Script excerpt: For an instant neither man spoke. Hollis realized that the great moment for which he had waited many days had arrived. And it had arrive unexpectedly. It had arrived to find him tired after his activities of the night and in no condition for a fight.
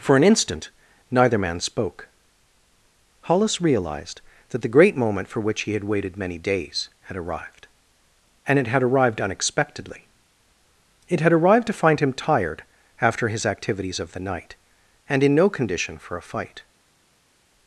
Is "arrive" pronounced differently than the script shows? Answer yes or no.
yes